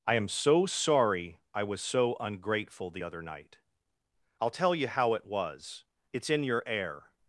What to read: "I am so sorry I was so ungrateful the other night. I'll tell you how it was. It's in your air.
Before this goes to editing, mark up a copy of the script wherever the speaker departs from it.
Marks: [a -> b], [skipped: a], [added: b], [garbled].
"I am so sorry I was so ungrateful the other night. I'll tell you how it was. It's in your air.